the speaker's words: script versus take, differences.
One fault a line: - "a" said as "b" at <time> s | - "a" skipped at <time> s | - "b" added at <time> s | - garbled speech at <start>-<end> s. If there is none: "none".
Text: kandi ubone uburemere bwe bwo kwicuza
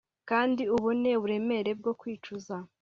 - "bwe" skipped at 1.7 s